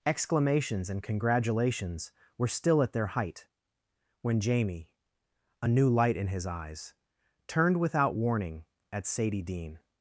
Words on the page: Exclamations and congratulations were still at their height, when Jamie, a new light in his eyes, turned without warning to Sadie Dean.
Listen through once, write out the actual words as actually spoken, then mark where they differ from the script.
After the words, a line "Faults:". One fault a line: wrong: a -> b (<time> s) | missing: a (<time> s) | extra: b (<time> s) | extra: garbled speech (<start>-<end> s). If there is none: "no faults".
Exclamations and congratulations were still at their height, when Jamie, a new light in his eyes, turned without warning at Sadie Dean.
Faults:
wrong: to -> at (8.9 s)